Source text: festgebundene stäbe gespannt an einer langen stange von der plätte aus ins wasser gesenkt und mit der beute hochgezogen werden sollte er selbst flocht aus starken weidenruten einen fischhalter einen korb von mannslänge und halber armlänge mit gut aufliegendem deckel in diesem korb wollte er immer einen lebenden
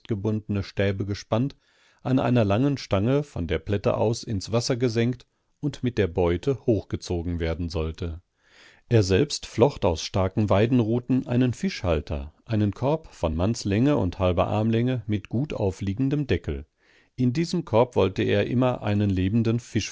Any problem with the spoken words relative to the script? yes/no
no